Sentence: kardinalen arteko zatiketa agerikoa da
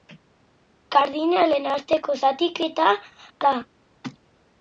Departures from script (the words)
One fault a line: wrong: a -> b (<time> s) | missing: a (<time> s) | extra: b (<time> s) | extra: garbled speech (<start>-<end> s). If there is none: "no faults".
missing: agerikoa (2.9 s)